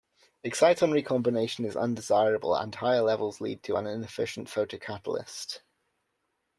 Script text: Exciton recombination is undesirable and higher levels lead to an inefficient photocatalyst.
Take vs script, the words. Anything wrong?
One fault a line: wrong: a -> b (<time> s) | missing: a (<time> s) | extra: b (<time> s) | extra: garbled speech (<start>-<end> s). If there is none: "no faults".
no faults